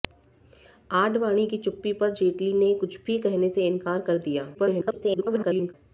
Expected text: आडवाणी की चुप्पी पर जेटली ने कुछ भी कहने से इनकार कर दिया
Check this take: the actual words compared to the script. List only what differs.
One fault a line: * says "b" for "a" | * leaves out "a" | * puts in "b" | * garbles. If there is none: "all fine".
* garbles